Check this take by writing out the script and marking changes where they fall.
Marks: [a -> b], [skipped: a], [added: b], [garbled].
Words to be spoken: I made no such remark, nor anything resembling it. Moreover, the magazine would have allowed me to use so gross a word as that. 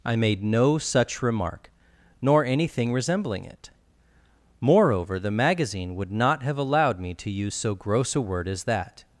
I made no such remark, nor anything resembling it. Moreover, the magazine would [added: not] have allowed me to use so gross a word as that.